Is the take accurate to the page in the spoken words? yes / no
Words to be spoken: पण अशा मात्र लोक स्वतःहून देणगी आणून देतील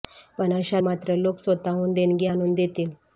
yes